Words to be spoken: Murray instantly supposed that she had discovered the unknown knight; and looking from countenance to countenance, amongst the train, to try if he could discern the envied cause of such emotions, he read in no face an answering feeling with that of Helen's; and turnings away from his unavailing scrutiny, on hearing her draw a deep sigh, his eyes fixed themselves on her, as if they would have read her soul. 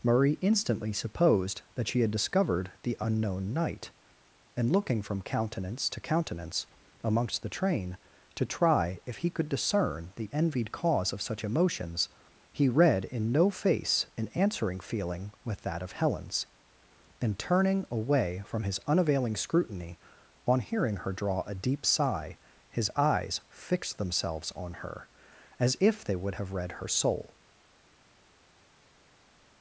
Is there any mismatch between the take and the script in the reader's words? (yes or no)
yes